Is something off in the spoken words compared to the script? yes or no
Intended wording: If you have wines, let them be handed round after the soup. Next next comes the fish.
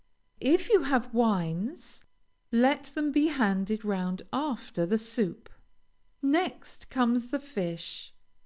yes